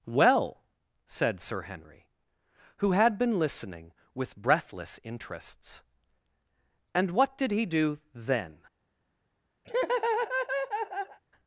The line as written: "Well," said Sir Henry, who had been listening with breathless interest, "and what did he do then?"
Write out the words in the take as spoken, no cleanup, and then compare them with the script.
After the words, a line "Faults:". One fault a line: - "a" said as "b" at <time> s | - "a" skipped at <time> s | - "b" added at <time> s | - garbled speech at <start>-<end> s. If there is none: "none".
"Well," said Sir Henry, who had been listening with breathless interests, "and what did he do then?"
Faults:
- "interest" said as "interests" at 5.0 s